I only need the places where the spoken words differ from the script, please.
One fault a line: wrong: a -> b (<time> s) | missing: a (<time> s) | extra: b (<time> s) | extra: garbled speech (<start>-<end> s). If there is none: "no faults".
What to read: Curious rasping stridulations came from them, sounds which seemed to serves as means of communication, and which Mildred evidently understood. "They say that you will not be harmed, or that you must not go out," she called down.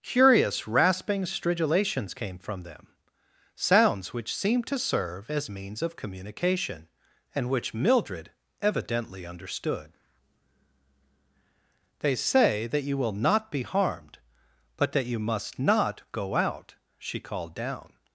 wrong: serves -> serve (4.8 s)
wrong: or -> but (14.8 s)